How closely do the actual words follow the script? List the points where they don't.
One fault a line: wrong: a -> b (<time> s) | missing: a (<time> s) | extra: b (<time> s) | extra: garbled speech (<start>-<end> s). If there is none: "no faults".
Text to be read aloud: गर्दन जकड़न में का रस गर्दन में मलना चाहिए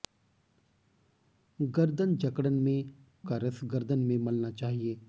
no faults